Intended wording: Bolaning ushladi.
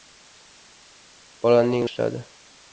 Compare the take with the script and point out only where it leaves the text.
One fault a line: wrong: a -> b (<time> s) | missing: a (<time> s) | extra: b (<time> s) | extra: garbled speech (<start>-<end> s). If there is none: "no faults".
no faults